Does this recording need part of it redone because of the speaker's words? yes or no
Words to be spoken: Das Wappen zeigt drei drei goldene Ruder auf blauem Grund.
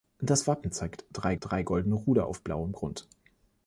no